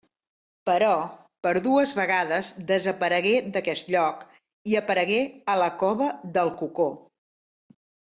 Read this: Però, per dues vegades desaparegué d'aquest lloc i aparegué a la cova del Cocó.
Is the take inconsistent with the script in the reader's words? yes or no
no